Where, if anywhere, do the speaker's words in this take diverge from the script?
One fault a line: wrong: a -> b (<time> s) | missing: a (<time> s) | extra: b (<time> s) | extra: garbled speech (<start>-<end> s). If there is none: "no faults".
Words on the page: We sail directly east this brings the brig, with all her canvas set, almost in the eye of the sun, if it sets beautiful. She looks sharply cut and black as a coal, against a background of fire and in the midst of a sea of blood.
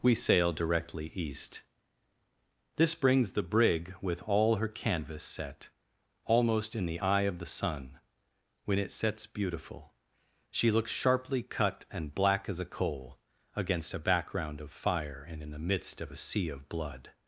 wrong: if -> when (8.6 s)